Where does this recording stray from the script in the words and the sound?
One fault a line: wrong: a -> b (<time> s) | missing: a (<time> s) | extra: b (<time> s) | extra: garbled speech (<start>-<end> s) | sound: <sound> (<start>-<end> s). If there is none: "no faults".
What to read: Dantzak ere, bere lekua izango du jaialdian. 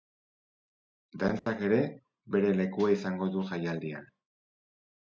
sound: dropout (1.4-1.5 s)